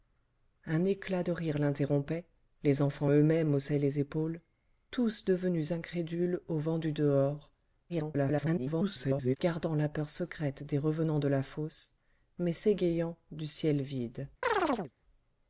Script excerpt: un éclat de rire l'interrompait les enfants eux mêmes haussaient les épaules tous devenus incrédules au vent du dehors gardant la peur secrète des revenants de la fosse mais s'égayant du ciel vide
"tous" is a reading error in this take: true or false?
false